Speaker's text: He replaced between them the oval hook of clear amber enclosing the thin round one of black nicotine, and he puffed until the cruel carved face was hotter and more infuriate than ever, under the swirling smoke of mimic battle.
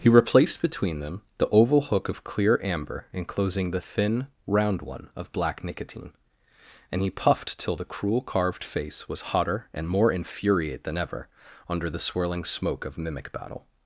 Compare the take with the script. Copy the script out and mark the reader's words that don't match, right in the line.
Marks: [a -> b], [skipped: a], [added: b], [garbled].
He replaced between them the oval hook of clear amber enclosing the thin round one of black nicotine, and he puffed [until -> till] the cruel carved face was hotter and more infuriate than ever, under the swirling smoke of mimic battle.